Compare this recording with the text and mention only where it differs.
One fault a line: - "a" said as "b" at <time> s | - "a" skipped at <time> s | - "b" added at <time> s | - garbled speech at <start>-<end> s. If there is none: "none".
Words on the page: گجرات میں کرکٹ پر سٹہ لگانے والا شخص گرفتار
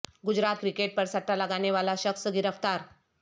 - "میں" skipped at 0.6 s